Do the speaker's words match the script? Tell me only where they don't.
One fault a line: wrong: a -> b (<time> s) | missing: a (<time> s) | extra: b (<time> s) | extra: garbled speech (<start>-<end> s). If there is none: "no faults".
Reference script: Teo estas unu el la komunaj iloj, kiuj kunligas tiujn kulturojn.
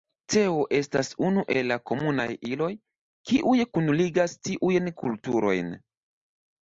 no faults